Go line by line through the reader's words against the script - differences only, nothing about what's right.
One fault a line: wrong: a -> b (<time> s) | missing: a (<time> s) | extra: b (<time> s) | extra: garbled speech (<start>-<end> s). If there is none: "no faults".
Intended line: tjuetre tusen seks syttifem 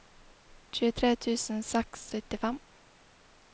no faults